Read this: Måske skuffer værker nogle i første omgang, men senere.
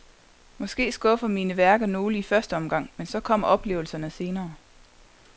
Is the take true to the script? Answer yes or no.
no